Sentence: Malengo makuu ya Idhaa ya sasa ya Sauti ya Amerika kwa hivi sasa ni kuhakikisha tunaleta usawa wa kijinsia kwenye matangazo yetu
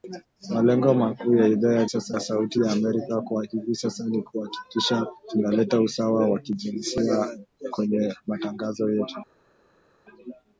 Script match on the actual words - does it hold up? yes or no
yes